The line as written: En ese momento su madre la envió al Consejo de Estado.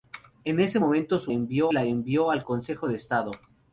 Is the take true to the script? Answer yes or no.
no